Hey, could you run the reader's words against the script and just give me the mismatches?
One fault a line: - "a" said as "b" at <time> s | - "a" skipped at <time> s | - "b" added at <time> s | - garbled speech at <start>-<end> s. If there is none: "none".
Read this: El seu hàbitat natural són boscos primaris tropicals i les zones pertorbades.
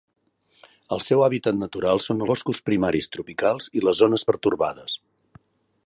none